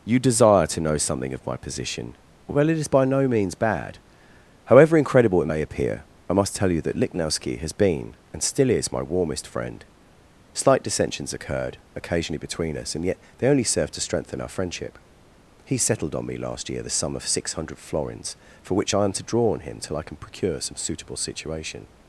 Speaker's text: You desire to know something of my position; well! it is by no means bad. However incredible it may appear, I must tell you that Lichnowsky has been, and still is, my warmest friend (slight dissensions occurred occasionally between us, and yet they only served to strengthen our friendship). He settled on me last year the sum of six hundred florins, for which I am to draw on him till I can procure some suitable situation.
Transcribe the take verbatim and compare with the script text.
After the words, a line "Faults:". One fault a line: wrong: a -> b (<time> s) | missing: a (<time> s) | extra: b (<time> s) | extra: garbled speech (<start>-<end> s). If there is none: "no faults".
You desire to know something of my position; well! it is by no means bad. However incredible it may appear, I must tell you that Lichnowsky has been, and still is, my warmest friend (slight dissensions occurred occasionally between us, and yet they only served to strengthen our friendship). He settled on me last year the sum of six hundred florins, for which I am to draw on him till I can procure some suitable situation.
Faults:
no faults